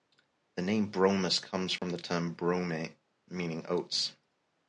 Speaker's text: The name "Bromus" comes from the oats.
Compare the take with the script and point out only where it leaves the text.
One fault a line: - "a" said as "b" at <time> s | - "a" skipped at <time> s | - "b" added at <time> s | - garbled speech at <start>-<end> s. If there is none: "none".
- "term brome meaning" added at 2.0 s